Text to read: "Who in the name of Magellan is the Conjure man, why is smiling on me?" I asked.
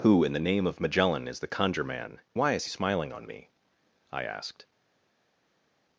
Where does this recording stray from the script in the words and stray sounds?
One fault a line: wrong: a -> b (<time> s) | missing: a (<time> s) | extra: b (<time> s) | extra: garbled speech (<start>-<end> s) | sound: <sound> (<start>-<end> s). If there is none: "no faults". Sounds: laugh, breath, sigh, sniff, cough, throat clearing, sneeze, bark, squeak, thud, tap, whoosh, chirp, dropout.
no faults